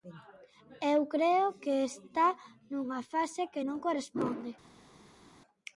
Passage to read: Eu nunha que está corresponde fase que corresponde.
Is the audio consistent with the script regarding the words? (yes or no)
no